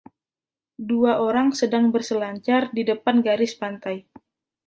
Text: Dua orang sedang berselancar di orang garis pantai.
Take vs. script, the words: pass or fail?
fail